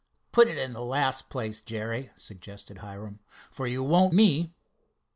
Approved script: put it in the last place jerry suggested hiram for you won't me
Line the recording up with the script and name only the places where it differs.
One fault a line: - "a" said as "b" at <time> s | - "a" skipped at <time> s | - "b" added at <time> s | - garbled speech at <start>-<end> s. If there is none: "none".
none